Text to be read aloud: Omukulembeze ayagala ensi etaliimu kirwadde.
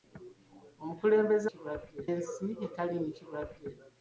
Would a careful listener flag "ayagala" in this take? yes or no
yes